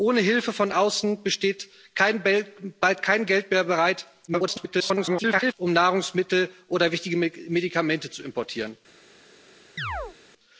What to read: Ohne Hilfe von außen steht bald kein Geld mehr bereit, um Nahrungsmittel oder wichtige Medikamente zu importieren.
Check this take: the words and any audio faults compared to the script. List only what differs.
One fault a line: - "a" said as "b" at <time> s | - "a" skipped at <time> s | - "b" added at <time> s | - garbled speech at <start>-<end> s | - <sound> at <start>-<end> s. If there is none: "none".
- garbled speech at 4.3-5.5 s
- chirp at 9.8-10.2 s